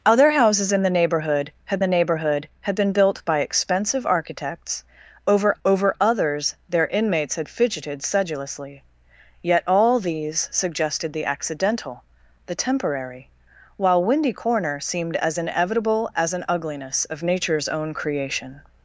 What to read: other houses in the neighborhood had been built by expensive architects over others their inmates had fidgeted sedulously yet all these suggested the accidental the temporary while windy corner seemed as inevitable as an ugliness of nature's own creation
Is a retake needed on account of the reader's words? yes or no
yes